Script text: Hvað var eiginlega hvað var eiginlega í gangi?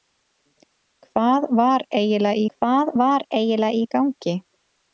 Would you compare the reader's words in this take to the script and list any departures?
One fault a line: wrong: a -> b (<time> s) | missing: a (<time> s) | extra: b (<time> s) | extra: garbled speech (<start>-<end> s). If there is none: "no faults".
no faults